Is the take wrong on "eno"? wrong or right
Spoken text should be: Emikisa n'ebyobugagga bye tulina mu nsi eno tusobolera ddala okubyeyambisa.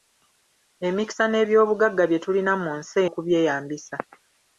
wrong